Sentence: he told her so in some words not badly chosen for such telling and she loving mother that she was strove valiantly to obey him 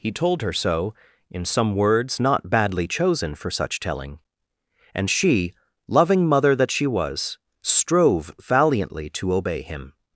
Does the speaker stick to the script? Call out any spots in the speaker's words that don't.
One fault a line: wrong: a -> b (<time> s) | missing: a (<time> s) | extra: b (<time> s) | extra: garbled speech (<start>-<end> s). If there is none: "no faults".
no faults